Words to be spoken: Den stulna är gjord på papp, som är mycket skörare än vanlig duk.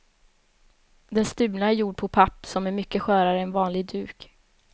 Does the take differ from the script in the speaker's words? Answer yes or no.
no